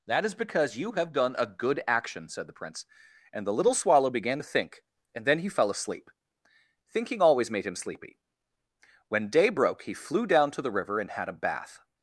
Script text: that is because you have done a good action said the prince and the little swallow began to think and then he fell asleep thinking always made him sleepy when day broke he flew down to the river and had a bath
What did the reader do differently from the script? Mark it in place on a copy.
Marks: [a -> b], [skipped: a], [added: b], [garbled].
that is because you have done a good action said the prince and the little swallow began to think and then he fell asleep thinking always made him sleepy when day broke he flew down to the river and had a bath